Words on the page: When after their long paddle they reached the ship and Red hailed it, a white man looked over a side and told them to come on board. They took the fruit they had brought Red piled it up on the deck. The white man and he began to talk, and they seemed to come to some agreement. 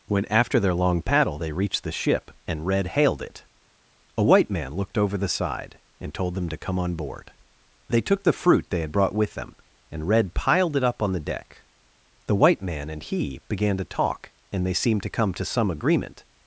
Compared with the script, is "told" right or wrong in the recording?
right